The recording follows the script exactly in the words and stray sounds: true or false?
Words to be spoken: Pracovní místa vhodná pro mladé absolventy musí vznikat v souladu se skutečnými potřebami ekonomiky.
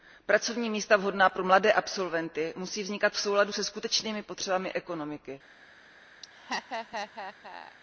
false